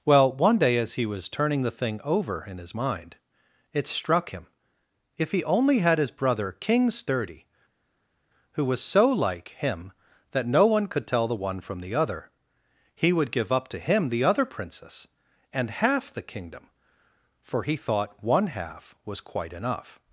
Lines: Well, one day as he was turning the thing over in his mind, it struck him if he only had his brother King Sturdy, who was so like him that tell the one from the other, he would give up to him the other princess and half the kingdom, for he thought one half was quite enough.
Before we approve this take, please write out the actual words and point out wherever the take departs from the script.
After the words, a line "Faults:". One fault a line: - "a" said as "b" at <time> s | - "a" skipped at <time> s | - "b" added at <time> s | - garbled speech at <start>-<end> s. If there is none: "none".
Well, one day as he was turning the thing over in his mind, it struck him if he only had his brother King Sturdy, who was so like him that no one could tell the one from the other, he would give up to him the other princess and half the kingdom, for he thought one half was quite enough.
Faults:
- "no one could" added at 10.5 s